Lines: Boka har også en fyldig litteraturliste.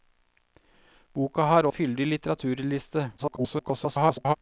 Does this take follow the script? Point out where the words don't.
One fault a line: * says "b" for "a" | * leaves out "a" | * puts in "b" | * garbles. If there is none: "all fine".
* leaves out "også"
* garbles